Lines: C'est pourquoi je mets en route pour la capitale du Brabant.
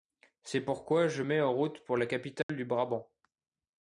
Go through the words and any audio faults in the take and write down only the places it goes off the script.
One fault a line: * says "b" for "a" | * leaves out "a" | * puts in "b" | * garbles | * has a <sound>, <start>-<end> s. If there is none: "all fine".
* has a dropout, 2.4-2.5 s